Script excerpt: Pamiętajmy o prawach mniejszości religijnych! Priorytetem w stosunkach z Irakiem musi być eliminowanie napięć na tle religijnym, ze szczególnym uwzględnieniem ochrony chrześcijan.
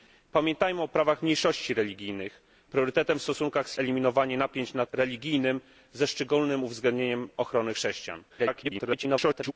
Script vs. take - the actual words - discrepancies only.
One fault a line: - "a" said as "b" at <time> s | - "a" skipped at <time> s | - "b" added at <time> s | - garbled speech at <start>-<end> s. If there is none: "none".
- "Irakiem musi być" skipped at 3.8 s
- "tle" skipped at 4.8 s
- garbled speech at 8.3-9.5 s